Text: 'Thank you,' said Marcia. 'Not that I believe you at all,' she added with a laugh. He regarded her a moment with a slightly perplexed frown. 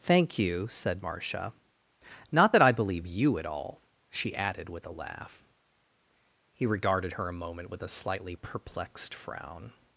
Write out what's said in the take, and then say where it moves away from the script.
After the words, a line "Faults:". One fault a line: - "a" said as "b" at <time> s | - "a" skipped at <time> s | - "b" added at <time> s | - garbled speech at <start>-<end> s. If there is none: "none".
'Thank you,' said Marcia. 'Not that I believe you at all,' she added with a laugh. He regarded her a moment with a slightly perplexed frown.
Faults:
none